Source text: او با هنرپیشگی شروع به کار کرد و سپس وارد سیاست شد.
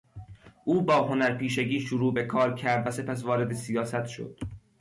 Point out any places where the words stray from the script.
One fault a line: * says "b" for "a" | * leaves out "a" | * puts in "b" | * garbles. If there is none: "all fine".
all fine